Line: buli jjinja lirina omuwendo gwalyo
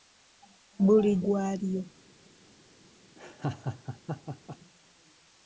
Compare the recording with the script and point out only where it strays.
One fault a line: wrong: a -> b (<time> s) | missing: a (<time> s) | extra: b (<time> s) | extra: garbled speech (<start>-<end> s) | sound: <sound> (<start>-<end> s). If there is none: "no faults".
missing: jjinja lirina omuwendo (1.1 s)
sound: laugh (3.2-4.6 s)